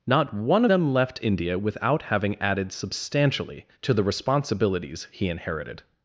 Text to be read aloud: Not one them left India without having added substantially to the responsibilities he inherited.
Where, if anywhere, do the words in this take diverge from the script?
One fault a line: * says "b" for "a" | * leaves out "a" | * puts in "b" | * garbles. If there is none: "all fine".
all fine